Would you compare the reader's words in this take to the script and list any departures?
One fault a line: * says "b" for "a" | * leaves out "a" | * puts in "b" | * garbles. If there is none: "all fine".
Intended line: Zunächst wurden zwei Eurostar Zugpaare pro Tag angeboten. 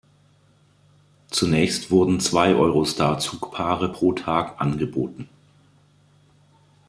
all fine